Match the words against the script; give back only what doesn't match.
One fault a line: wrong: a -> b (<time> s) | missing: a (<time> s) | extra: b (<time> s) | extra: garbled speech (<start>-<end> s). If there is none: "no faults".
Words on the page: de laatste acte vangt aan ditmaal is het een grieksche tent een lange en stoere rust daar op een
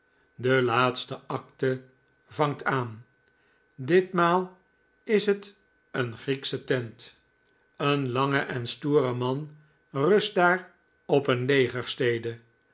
extra: man (9.1 s)